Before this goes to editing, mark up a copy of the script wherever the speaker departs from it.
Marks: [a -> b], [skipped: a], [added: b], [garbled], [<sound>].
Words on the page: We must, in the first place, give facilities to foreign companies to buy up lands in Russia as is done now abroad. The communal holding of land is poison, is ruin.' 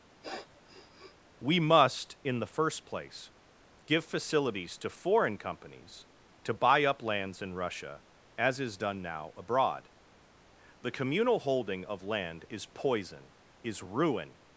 [sniff] We must, in the first place, give facilities to foreign companies to buy up lands in Russia as is done now abroad. The communal holding of land is poison, is ruin.'